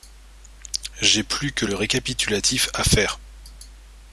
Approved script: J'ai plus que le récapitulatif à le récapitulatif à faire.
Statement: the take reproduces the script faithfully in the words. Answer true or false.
false